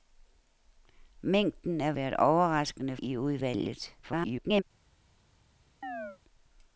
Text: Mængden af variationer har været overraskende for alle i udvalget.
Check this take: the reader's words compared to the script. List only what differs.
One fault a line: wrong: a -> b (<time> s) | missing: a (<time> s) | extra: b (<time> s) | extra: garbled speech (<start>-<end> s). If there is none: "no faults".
missing: variationer har (1.9 s)
missing: for alle (3.0 s)
extra: garbled speech (4.0-4.6 s)